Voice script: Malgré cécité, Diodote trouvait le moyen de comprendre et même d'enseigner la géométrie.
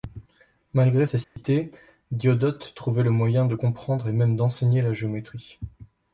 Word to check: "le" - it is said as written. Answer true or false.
true